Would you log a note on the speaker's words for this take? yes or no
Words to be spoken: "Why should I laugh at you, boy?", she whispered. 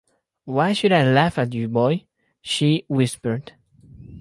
no